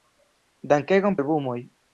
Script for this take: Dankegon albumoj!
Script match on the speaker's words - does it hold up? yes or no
yes